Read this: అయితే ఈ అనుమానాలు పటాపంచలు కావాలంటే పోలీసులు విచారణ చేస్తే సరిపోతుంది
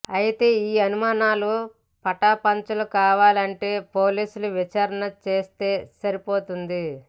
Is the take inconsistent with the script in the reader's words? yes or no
no